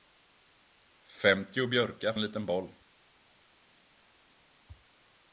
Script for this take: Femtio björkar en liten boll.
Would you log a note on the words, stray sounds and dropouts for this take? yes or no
no